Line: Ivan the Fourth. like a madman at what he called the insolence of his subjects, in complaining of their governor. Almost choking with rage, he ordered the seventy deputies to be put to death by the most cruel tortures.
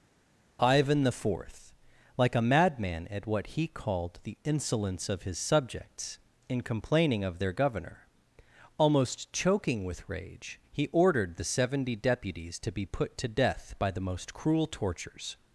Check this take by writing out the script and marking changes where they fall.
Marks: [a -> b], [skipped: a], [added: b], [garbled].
Ivan the Fourth. like a madman at what he called the insolence of his subjects, in complaining of their governor. Almost choking with rage, he ordered the seventy deputies to be put to death by the most cruel tortures.